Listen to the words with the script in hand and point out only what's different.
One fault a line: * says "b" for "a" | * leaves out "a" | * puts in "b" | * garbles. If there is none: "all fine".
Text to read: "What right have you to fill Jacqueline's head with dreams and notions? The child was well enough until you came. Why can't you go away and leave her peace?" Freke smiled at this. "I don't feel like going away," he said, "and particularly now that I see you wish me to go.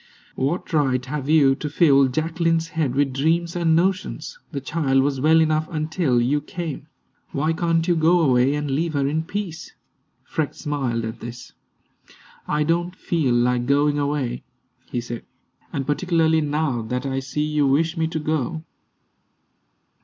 * puts in "in"